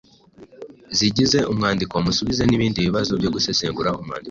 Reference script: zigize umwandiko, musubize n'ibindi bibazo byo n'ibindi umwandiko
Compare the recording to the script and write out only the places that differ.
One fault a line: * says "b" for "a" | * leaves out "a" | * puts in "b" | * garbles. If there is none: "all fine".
* says "gusesengura" for "n'ibindi"